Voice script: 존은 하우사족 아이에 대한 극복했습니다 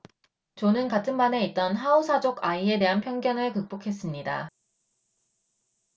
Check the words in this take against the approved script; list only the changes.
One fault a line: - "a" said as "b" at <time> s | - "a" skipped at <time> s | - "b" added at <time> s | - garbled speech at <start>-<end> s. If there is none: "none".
- "같은 반에 있던" added at 0.9 s
- "편견을" added at 3.0 s